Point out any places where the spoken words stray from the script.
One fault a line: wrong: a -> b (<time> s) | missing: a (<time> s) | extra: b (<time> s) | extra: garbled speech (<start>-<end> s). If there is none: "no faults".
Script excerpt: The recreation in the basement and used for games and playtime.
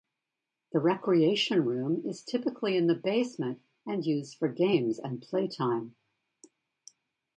extra: room is typically (1.6 s)